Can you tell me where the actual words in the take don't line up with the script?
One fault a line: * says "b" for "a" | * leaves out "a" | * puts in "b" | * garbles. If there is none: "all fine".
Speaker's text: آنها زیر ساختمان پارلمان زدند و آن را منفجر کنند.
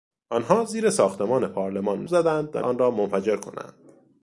all fine